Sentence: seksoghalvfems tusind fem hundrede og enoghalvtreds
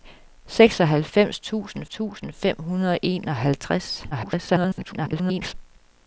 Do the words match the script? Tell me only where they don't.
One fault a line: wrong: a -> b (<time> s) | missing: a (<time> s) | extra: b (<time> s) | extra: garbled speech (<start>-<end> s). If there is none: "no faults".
extra: tusind (1.9 s)
extra: garbled speech (4.1-5.5 s)